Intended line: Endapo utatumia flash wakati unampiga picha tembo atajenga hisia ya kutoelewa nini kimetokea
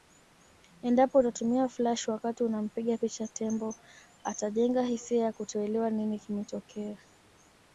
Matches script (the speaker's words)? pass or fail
pass